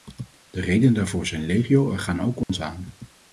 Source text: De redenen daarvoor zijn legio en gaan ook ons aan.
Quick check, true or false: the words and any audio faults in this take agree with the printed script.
false